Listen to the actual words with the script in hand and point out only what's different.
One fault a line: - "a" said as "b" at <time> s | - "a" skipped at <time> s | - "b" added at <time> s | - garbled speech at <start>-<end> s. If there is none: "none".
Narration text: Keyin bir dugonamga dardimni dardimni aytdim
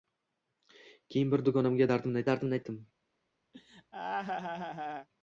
none